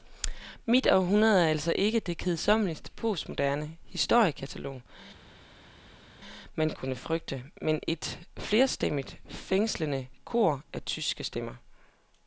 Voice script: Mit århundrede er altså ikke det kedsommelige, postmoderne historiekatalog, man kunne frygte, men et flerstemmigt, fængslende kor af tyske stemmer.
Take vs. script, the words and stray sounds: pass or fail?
pass